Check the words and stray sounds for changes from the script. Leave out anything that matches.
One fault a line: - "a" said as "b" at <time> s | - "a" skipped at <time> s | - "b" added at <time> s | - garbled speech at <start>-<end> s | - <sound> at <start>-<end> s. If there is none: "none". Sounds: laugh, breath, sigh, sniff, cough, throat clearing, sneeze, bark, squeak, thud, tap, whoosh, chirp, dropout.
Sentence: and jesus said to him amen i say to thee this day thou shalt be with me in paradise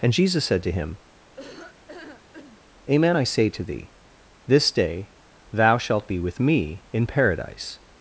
- laugh at 1.4-2.6 s